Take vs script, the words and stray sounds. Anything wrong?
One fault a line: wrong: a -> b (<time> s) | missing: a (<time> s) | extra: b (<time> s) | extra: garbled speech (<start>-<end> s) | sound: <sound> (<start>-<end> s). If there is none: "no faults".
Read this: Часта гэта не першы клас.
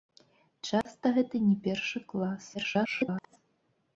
sound: dropout (0.8-0.9 s)
extra: garbled speech (2.5-3.4 s)